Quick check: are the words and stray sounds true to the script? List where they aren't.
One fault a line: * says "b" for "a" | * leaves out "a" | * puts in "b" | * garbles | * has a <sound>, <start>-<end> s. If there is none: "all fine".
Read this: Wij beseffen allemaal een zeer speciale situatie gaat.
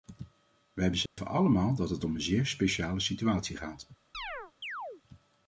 * has a dropout, 1.1-1.2 s
* puts in "dat het om"
* has a chirp, 4.1-5.0 s